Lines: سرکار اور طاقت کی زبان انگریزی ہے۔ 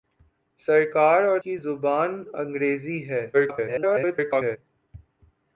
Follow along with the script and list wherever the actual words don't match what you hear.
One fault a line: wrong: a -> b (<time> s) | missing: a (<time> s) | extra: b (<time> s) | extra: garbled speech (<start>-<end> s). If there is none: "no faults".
missing: طاقت (1.4 s)
extra: garbled speech (3.3-4.6 s)